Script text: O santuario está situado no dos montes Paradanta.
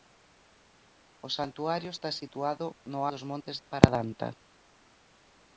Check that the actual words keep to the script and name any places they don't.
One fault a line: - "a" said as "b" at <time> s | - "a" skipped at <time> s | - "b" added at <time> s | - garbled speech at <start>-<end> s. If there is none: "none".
none